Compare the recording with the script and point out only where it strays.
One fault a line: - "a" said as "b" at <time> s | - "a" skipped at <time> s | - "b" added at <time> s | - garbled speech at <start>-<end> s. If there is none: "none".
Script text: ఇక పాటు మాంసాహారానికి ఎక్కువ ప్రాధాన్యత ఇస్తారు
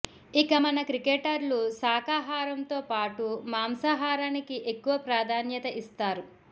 - "మన క్రికెటర్లు శాఖాహారంతో" added at 0.6 s